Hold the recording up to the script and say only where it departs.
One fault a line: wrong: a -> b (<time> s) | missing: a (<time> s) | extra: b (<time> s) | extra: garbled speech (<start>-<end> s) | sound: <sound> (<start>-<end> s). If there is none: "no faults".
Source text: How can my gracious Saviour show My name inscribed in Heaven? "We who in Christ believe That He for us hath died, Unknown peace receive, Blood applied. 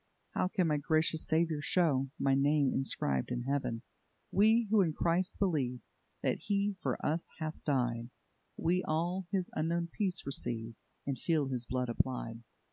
extra: We all His (8.6 s)
extra: And feel His (11.1 s)